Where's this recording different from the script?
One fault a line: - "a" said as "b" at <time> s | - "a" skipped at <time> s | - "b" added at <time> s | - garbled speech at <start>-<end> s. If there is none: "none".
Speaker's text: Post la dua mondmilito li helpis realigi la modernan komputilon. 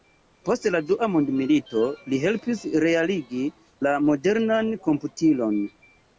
none